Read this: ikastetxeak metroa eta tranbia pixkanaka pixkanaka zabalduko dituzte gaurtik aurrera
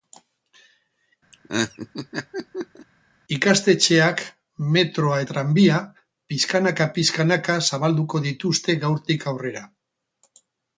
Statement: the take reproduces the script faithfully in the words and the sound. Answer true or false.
false